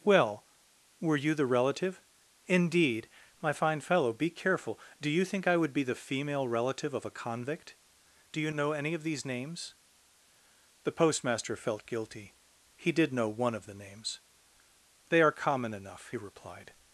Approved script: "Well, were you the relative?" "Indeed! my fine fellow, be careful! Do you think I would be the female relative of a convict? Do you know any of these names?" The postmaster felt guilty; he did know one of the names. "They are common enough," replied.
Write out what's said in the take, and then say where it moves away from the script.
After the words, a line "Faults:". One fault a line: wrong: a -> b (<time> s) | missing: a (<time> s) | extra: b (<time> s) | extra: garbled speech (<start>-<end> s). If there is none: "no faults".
"Well, were you the relative?" "Indeed! my fine fellow, be careful! Do you think I would be the female relative of a convict? Do you know any of these names?" The postmaster felt guilty; he did know one of the names. "They are common enough," replied.
Faults:
no faults